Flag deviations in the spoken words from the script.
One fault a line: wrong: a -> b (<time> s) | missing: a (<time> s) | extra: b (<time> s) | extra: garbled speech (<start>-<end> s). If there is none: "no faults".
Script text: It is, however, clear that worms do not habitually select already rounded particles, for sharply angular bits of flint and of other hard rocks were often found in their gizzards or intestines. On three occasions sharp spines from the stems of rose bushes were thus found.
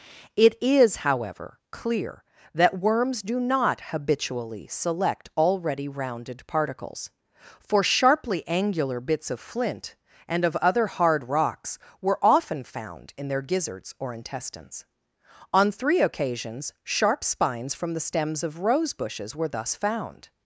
no faults